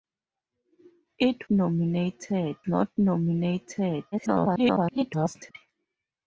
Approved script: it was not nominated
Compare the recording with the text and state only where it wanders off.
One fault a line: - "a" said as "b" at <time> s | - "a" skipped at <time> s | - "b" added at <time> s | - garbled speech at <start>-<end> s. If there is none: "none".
- "was" said as "nominated" at 1.5 s
- garbled speech at 4.1-5.5 s